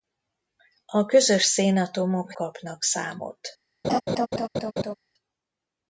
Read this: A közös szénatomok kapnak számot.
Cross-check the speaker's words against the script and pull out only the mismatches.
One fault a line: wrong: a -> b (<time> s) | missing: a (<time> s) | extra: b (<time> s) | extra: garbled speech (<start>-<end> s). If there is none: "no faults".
no faults